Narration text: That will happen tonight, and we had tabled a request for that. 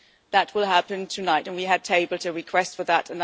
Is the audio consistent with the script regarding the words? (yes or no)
yes